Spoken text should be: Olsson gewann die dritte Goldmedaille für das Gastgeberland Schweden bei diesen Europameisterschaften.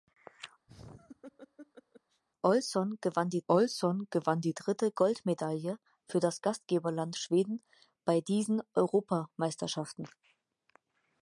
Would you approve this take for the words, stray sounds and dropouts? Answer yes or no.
no